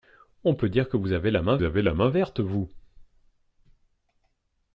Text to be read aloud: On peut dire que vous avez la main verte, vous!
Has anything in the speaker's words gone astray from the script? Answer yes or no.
yes